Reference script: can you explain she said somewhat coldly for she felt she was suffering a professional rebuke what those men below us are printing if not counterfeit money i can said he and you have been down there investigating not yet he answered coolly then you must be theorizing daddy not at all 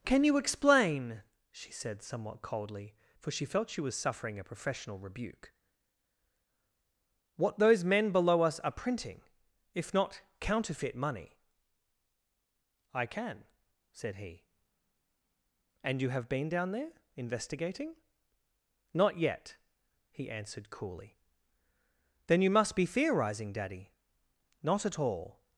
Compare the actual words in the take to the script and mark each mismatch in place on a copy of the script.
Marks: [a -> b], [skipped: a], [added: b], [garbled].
can you explain she said somewhat coldly for she felt she was suffering a professional rebuke what those men below us are printing if not counterfeit money i can said he and you have been down there investigating not yet he answered coolly then you must be theorizing daddy not at all